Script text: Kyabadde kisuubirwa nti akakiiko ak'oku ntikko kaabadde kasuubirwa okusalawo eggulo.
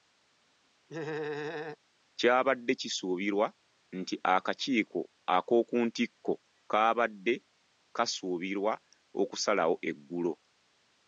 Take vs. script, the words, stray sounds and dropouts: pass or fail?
fail